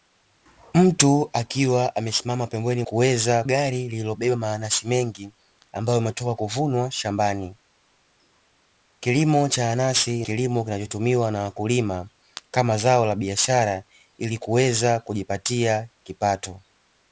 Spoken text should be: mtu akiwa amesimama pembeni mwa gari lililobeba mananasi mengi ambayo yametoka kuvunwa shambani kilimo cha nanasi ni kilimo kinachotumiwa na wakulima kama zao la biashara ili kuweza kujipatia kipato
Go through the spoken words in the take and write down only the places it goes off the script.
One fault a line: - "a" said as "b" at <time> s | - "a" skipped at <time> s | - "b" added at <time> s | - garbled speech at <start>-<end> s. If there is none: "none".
- "mwa" said as "kuweza" at 2.8 s
- "ni" skipped at 10.3 s